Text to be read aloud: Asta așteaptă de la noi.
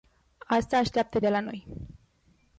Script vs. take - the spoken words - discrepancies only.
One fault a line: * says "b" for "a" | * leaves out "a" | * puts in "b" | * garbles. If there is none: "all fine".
all fine